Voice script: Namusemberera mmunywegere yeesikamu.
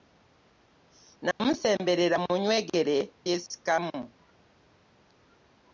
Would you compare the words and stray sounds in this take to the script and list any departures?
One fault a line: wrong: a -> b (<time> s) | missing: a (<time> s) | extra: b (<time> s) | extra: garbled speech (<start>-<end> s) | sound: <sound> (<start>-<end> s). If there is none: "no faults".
sound: dropout (1.3-1.4 s)